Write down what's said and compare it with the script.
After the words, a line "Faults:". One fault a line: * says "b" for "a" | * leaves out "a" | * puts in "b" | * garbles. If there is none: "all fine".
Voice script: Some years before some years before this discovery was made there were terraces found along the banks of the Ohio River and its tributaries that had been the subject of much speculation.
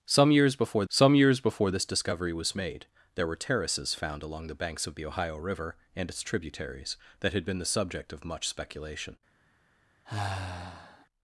Some years before some years before this discovery was made there were terraces found along the banks of the Ohio River and its tributaries that had been the subject of much speculation.
Faults:
all fine